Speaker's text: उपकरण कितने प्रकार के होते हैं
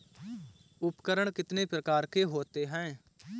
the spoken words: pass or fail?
pass